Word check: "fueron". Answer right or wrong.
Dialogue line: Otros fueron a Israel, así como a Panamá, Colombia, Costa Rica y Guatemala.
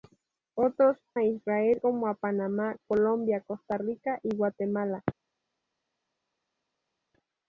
wrong